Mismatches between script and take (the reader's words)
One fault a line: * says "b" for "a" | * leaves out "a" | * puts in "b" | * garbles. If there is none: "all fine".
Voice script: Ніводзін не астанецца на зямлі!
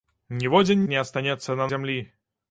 all fine